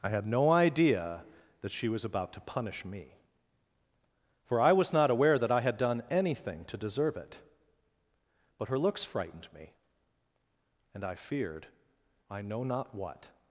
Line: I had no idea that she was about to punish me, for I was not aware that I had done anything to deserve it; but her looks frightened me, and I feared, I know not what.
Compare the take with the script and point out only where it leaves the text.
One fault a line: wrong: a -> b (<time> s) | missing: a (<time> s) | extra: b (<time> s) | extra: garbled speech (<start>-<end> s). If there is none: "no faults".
no faults